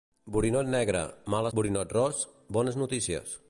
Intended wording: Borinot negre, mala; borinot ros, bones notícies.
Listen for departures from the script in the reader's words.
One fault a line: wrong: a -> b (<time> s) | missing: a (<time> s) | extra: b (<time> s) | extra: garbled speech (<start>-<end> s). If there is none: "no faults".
no faults